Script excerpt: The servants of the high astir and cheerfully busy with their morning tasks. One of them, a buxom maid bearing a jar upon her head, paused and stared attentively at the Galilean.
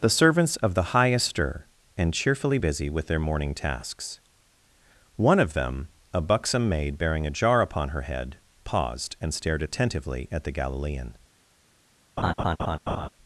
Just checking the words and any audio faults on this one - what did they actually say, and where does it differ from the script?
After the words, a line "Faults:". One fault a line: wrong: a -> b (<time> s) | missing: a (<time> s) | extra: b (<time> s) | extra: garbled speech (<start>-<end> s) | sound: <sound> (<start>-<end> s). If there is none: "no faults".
The servants of the high astir and cheerfully busy with their morning tasks. One of them, a buxom maid bearing a jar upon her head, paused and stared attentively at the Galilean.
Faults:
sound: laugh (12.2-13.1 s)